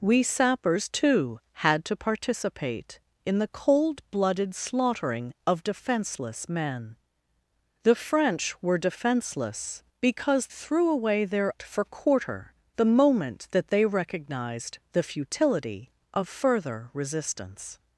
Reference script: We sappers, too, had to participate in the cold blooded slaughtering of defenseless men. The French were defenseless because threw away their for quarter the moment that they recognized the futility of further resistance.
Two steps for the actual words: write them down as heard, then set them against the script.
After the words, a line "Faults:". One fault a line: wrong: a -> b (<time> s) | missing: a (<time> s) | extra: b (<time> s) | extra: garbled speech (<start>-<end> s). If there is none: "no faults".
We sappers, too, had to participate in the cold blooded slaughtering of defenseless men. The French were defenseless because threw away their for quarter the moment that they recognized the futility of further resistance.
Faults:
no faults